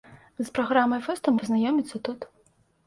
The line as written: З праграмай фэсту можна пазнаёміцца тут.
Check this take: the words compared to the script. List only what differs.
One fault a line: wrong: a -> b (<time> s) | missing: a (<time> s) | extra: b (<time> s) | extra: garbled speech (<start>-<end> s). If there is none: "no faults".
missing: можна (1.3 s)